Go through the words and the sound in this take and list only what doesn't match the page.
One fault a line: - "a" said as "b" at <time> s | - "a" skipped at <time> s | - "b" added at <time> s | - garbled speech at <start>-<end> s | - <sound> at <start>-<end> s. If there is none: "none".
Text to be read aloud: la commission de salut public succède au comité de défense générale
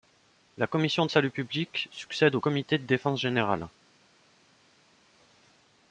none